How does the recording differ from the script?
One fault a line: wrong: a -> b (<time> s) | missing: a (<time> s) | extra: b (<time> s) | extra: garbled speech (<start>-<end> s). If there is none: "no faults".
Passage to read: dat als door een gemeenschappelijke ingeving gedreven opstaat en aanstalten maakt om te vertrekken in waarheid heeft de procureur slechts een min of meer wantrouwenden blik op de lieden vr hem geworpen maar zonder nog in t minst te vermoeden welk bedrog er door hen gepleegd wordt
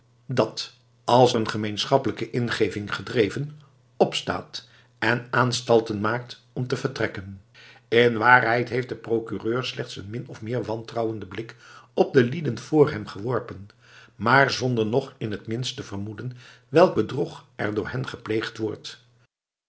missing: door (1.4 s)